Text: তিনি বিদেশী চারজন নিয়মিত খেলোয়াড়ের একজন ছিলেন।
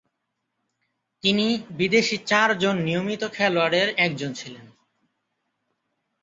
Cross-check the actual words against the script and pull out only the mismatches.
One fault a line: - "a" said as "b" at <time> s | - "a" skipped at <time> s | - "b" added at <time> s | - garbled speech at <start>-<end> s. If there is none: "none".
none